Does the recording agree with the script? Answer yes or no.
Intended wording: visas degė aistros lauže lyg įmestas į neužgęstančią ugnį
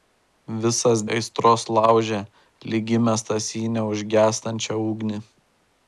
no